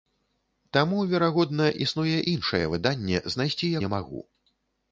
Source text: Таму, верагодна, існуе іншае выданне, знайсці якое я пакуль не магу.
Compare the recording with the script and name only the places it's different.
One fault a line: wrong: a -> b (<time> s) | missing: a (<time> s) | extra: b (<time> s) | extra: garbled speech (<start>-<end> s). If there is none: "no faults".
missing: якое я пакуль (3.7 s)